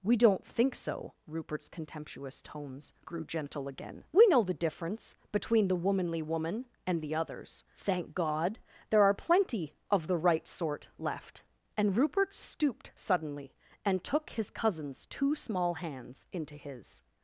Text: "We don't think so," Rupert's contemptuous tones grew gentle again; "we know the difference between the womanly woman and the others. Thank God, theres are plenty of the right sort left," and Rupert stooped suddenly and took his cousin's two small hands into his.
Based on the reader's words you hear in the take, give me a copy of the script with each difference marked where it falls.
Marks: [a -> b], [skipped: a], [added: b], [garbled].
"We don't think so," Rupert's contemptuous tones grew gentle again; "we know the difference between the womanly woman and the others. Thank God, [theres -> there] are plenty of the right sort left," and Rupert stooped suddenly and took his cousin's two small hands into his.